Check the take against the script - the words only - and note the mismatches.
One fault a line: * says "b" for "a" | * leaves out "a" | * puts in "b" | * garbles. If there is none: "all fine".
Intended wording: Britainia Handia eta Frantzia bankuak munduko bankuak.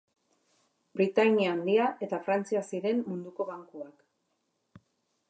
* says "ziren" for "bankuak"